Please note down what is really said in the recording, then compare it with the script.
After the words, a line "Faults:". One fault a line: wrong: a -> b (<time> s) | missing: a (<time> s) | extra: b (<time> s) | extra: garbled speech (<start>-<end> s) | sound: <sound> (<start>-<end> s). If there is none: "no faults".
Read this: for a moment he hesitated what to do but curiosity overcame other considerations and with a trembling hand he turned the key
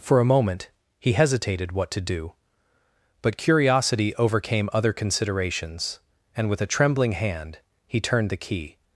for a moment he hesitated what to do but curiosity overcame other considerations and with a trembling hand he turned the key
Faults:
no faults